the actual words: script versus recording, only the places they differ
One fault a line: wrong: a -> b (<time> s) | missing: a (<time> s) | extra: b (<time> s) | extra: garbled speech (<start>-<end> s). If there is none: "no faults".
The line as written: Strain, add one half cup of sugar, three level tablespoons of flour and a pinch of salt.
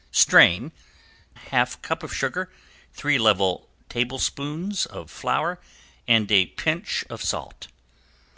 missing: add one (0.7 s)